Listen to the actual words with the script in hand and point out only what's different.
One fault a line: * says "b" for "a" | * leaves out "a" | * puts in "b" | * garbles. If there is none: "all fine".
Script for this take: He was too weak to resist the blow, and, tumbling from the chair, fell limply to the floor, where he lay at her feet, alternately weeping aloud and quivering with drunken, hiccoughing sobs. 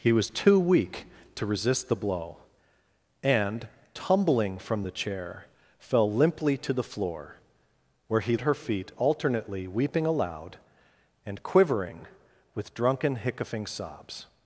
* leaves out "lay"